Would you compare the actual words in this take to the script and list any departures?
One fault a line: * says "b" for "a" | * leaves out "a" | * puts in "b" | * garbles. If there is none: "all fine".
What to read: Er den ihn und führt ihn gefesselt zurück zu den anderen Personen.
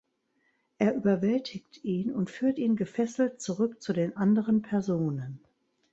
* says "überwältigt" for "den"